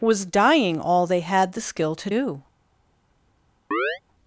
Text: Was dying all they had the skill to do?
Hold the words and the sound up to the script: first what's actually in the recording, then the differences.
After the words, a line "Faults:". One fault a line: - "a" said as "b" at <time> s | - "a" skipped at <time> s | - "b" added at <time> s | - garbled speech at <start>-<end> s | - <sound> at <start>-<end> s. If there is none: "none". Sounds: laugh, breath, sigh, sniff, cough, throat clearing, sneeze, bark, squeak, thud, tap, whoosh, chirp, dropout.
Was dying all they had the skill to do?
Faults:
- chirp at 3.7-4.0 s